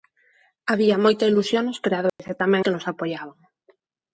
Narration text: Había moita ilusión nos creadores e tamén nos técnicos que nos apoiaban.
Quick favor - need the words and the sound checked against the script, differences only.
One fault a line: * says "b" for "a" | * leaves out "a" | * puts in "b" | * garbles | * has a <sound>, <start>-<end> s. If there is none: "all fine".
* has a dropout, 2.1-2.2 s
* leaves out "nos técnicos"